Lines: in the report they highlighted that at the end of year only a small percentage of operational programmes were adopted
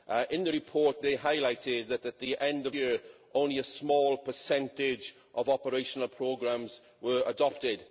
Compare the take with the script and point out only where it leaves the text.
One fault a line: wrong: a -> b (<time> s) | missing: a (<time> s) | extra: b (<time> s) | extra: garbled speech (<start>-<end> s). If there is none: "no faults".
no faults